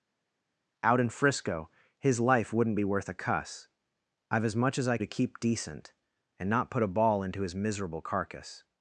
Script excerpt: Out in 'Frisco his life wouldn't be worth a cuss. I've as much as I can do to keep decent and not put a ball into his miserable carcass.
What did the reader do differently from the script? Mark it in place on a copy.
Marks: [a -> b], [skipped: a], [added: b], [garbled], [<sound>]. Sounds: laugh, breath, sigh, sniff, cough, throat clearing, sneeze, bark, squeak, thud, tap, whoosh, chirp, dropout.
Out in 'Frisco his life wouldn't be worth a cuss. I've as much as I [skipped: can do] to keep decent and not put a ball into his miserable carcass.